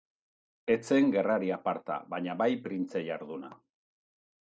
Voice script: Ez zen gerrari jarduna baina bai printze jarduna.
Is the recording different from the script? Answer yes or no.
yes